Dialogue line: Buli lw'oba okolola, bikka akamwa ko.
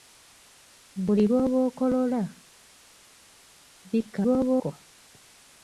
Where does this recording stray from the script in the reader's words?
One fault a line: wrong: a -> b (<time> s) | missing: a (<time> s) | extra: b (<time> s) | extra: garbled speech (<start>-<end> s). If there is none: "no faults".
wrong: akamwa -> lw'oba (4.2 s)